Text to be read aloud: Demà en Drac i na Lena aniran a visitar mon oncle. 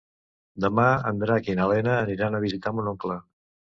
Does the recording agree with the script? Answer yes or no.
yes